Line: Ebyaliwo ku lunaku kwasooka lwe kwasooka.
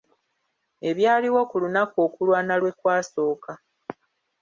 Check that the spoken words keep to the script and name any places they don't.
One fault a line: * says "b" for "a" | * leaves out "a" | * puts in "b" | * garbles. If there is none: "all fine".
* says "okulwana" for "kwasooka"